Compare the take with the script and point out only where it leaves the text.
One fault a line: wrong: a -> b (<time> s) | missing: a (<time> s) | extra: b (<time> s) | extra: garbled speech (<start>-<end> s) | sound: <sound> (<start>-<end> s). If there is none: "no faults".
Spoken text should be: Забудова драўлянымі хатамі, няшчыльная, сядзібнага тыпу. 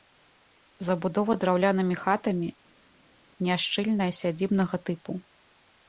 no faults